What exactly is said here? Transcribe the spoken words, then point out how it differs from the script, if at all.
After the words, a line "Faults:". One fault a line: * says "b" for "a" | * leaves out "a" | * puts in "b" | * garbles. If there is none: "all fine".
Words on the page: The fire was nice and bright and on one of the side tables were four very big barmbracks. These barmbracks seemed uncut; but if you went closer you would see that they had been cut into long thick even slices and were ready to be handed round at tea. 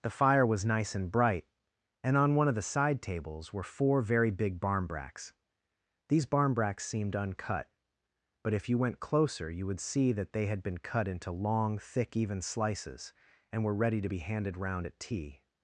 The fire was nice and bright and on one of the side tables were four very big barmbracks. These barmbracks seemed uncut; but if you went closer you would see that they had been cut into long thick even slices and were ready to be handed round at tea.
Faults:
all fine